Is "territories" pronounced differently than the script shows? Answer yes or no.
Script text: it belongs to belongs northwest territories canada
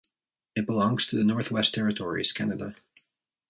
no